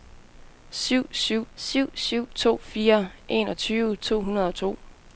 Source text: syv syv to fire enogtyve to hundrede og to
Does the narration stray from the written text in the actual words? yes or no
yes